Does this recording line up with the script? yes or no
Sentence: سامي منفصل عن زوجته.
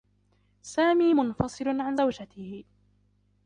yes